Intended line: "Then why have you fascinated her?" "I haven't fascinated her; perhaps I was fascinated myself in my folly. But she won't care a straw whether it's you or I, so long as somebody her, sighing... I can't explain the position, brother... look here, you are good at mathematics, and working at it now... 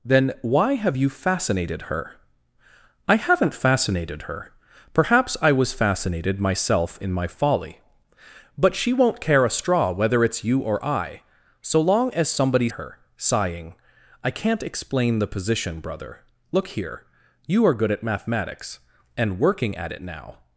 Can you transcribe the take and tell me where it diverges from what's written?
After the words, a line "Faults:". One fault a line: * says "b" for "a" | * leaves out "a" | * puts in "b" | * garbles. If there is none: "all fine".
"Then why have you fascinated her?" "I haven't fascinated her; perhaps I was fascinated myself in my folly. But she won't care a straw whether it's you or I, so long as somebody her, sighing... I can't explain the position, brother... look here, you are good at mathematics, and working at it now...
Faults:
all fine